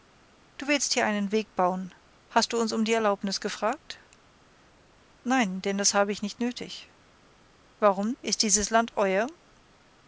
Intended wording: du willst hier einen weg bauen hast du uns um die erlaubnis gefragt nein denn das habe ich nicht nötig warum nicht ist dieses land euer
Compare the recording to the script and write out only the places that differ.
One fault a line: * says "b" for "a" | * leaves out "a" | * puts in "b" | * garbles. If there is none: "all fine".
* leaves out "nicht"